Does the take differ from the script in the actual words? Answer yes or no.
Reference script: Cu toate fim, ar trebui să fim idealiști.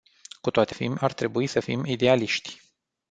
no